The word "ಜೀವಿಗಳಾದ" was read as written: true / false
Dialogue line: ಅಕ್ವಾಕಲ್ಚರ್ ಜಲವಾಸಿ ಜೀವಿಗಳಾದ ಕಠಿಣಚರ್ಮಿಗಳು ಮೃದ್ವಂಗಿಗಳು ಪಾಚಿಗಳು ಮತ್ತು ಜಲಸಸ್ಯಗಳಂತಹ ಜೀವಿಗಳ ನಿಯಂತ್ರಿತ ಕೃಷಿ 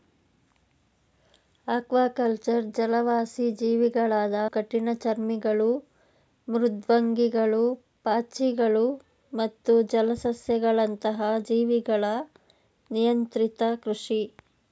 true